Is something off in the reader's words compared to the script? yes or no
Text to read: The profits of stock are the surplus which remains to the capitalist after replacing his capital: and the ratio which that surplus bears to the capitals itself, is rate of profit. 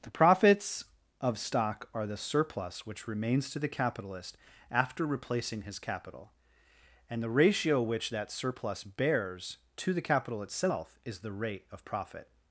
yes